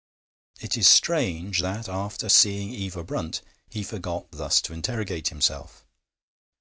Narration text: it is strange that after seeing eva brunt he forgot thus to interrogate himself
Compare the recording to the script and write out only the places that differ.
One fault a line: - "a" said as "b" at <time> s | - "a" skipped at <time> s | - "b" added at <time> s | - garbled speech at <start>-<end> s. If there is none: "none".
none